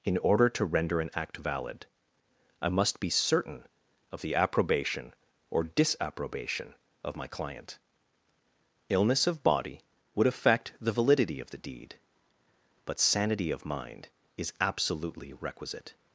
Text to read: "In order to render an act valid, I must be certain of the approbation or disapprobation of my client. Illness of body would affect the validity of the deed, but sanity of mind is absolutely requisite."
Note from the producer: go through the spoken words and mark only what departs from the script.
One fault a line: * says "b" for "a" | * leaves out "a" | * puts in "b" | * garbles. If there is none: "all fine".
all fine